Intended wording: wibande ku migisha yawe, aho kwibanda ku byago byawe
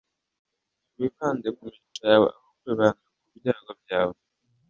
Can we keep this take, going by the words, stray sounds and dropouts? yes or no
no